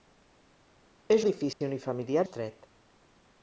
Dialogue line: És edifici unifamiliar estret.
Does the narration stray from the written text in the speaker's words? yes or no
no